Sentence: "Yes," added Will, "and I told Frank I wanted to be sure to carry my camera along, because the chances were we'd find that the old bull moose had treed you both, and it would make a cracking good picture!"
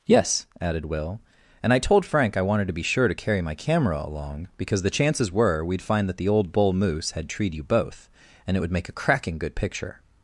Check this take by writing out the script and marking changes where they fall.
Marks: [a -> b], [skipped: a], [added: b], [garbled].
"Yes," added Will, "and I told Frank I wanted to be sure to carry my camera along, because the chances were we'd find that the old bull moose had treed you both, and it would make a cracking good picture!"